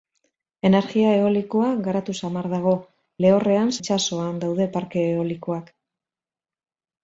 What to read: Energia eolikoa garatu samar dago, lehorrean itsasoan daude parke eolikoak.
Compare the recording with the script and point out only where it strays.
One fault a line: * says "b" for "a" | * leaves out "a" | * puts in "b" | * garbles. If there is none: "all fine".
all fine